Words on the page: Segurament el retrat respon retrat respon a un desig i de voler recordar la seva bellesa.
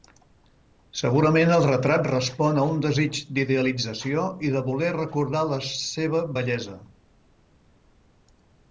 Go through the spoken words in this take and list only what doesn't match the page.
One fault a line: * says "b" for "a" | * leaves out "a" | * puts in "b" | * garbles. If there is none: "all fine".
* leaves out "retrat respon"
* puts in "d'idealització"